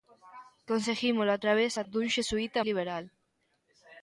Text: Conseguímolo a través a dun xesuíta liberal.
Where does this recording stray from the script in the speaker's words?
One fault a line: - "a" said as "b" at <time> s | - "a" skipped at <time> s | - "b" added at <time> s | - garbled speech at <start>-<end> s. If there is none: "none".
none